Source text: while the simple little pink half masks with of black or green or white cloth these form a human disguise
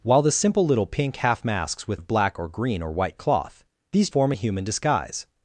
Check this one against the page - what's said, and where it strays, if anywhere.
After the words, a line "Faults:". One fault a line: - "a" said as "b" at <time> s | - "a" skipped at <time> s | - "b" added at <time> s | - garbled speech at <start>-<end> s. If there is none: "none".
while the simple little pink half masks with of black or green or white cloth these form a human disguise
Faults:
none